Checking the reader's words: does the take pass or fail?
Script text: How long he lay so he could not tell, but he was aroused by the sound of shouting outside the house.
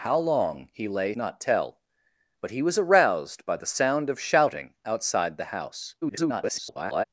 fail